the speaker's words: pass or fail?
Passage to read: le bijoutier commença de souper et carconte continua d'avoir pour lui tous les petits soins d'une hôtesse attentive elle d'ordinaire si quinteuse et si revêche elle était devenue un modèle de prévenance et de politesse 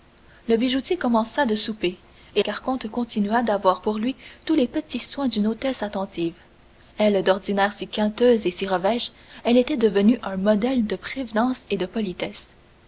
pass